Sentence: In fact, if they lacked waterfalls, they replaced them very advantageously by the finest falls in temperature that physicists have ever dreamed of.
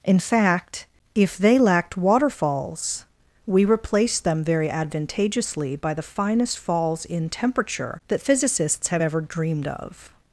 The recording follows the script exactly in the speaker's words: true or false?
false